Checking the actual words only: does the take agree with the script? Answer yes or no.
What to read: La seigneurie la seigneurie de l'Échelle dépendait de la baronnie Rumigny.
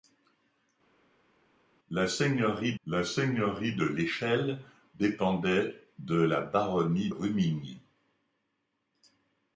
yes